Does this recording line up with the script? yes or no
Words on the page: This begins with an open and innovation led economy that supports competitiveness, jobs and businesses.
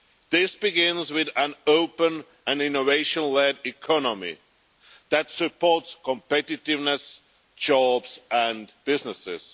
yes